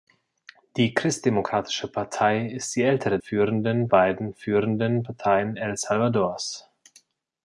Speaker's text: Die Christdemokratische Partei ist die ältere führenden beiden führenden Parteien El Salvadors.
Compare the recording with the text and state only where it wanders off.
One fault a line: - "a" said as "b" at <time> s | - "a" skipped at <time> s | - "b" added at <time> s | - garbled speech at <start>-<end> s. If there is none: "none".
none